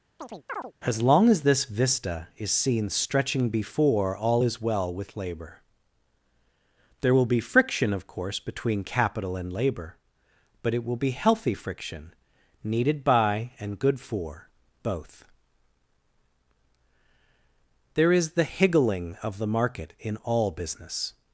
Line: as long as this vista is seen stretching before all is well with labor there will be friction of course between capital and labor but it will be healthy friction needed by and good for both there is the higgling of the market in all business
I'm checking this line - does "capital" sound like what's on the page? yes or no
yes